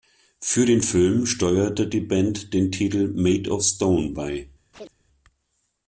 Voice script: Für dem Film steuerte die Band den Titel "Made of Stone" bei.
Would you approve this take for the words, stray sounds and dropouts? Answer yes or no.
no